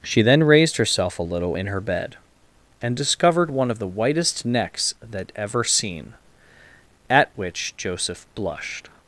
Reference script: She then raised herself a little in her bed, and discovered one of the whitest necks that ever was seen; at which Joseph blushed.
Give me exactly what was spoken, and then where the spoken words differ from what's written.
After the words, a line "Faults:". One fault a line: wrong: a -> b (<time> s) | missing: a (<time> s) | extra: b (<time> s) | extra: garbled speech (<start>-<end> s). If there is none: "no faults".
She then raised herself a little in her bed, and discovered one of the whitest necks that ever seen; at which Joseph blushed.
Faults:
missing: was (5.6 s)